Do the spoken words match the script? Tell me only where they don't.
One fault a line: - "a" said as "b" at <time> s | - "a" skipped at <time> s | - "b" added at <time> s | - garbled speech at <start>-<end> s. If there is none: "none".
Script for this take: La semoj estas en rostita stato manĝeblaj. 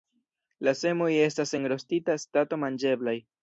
none